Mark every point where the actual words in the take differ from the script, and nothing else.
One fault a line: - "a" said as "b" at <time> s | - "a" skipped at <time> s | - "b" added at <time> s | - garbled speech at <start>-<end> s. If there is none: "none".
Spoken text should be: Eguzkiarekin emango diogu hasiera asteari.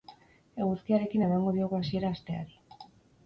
none